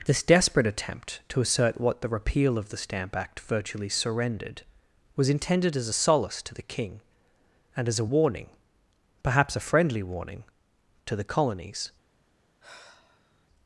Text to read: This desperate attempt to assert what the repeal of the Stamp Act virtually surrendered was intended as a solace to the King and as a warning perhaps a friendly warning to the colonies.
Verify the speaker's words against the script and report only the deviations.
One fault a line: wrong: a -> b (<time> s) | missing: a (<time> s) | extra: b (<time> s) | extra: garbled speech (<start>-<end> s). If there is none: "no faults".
no faults